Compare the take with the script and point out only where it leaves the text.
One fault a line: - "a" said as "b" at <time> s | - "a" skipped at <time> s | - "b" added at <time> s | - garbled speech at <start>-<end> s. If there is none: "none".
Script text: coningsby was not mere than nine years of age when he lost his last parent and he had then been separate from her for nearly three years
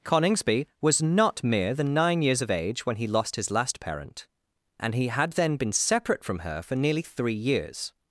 none